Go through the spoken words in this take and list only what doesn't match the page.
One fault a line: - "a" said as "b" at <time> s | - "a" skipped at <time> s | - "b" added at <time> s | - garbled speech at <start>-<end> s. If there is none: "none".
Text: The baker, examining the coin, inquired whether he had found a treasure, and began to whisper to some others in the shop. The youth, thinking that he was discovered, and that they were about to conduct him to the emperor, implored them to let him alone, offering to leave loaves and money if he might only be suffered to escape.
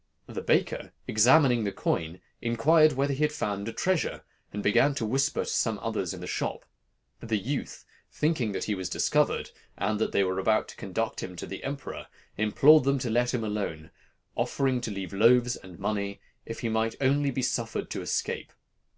none